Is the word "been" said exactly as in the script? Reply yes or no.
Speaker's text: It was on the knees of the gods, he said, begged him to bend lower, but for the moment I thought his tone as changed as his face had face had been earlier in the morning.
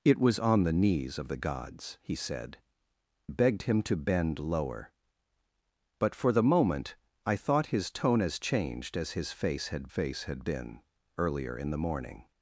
yes